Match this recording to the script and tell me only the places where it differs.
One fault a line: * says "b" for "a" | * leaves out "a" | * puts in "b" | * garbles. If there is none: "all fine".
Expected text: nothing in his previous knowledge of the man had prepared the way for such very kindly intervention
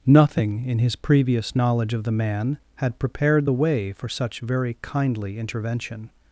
all fine